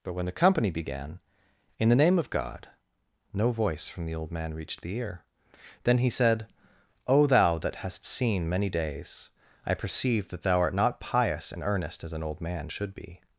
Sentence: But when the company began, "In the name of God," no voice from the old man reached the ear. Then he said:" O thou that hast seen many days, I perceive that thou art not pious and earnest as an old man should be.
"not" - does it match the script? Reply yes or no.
yes